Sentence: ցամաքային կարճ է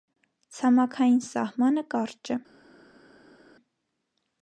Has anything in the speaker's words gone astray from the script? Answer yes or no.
yes